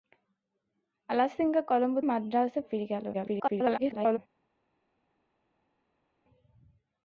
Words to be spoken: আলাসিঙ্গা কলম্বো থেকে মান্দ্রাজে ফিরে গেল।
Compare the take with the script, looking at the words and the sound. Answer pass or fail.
fail